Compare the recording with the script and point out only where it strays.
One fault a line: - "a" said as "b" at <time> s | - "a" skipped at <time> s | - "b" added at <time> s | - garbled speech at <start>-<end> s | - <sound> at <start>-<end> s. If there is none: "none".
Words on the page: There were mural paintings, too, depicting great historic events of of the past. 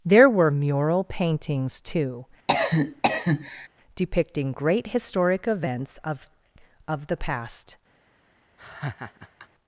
- cough at 2.5-3.7 s
- laugh at 8.6-9.5 s